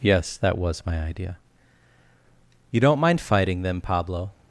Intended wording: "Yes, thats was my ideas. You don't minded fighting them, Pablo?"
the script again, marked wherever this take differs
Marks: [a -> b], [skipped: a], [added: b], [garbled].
"Yes, [thats -> that] was my [ideas. -> idea] You don't [minded -> mind] fighting them, Pablo?"